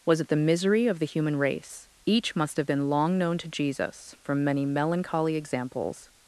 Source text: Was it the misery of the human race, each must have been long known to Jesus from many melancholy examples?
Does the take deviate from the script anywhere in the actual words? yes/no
no